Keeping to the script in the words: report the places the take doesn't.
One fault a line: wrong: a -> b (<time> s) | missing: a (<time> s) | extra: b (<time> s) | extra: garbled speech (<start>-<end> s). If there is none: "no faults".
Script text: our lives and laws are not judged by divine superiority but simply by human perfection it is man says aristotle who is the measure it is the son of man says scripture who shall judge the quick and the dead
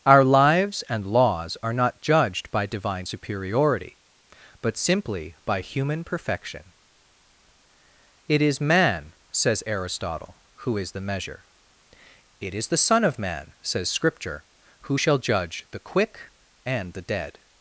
no faults